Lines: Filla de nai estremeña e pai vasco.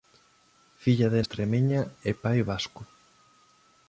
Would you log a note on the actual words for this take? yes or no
yes